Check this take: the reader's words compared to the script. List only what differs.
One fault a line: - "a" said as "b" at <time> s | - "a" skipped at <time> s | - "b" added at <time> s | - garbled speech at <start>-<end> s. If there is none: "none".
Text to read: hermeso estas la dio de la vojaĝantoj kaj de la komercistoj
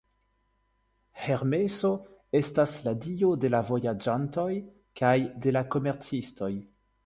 none